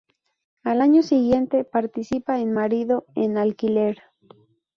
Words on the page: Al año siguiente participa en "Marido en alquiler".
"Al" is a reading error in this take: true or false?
false